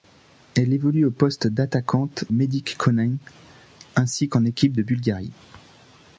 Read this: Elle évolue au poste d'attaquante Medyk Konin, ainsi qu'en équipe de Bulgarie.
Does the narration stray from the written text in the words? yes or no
no